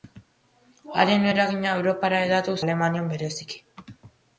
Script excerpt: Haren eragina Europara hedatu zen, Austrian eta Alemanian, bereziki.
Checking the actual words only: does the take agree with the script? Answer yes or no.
no